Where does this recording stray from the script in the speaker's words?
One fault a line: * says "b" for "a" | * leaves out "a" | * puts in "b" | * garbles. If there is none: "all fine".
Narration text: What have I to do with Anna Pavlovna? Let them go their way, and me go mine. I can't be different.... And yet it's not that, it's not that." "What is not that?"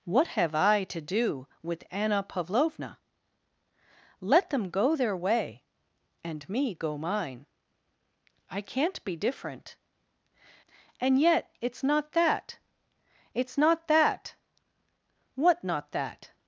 * leaves out "is"